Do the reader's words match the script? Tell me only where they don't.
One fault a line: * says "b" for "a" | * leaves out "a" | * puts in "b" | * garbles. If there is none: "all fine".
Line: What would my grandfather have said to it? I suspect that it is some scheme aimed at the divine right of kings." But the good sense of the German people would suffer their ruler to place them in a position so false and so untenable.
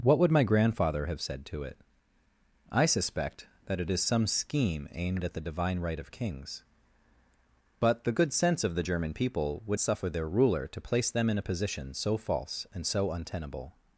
all fine